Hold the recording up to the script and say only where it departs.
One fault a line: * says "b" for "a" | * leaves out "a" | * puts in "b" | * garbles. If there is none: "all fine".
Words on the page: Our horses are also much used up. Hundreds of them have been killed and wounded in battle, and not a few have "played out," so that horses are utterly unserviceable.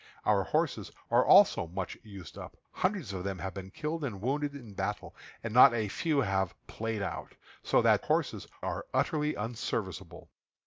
all fine